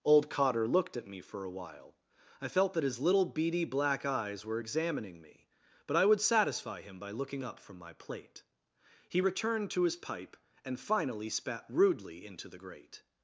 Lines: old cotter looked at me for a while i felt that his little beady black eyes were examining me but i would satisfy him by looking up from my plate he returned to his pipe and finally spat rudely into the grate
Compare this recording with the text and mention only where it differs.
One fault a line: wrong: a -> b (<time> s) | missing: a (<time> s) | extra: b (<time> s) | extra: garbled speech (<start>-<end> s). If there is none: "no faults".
no faults